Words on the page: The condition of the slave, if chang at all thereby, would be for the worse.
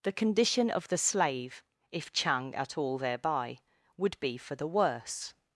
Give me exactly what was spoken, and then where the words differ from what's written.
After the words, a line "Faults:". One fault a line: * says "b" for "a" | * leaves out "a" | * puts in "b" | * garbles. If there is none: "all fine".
The condition of the slave, if chang at all thereby, would be for the worse.
Faults:
all fine